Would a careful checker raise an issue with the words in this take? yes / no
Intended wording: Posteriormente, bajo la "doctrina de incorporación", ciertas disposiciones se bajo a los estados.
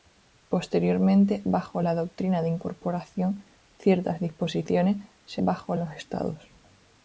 no